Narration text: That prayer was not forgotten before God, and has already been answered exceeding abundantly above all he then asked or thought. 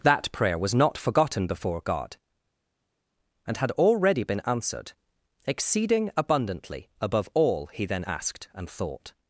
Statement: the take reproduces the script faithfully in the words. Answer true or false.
false